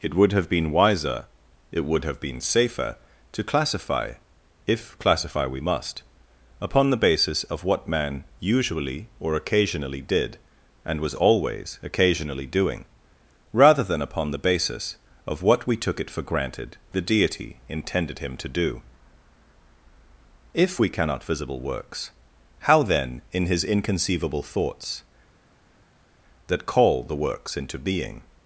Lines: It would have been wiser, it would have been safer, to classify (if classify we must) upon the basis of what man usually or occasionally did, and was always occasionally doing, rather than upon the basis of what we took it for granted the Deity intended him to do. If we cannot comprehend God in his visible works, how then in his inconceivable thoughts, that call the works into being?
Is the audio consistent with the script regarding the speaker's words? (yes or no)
no